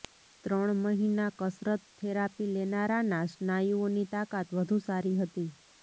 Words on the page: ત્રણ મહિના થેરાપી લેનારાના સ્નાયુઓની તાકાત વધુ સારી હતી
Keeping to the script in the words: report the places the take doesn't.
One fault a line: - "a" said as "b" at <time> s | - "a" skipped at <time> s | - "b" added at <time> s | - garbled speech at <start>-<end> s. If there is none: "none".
- "કસરત" added at 1.4 s